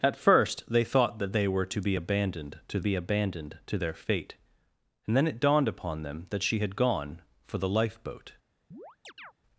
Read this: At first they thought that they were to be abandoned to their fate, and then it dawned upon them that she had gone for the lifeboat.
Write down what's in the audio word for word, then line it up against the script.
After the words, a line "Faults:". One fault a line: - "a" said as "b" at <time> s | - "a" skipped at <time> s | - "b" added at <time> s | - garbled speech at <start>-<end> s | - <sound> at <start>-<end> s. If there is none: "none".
At first they thought that they were to be abandoned to be abandoned to their fate, and then it dawned upon them that she had gone for the lifeboat.
Faults:
- "be abandoned to" added at 2.8 s
- chirp at 8.7-9.3 s